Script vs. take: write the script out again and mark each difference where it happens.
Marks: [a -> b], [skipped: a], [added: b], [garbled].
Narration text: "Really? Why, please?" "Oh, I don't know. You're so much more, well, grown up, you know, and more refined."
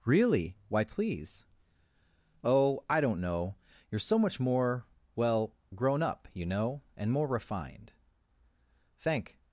"Really? Why, please?" "Oh, I don't know. You're so much more, well, grown up, you know, and more refined." [added: Thank]